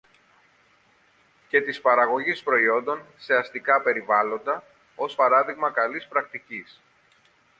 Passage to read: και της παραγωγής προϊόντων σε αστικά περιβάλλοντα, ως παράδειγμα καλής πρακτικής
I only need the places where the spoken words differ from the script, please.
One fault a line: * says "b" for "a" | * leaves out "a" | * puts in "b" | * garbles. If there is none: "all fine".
all fine